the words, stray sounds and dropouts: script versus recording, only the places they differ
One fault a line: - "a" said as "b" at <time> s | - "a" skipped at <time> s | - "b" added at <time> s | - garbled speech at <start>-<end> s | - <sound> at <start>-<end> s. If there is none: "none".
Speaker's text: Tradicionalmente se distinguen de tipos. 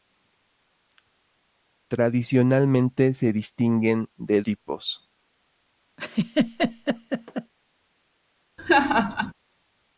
- laugh at 6.0-7.5 s
- laugh at 8.6-9.3 s